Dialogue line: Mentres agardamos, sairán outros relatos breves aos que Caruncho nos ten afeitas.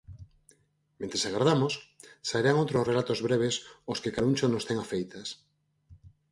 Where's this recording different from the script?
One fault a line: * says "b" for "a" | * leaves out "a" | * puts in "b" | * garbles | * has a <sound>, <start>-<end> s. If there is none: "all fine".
all fine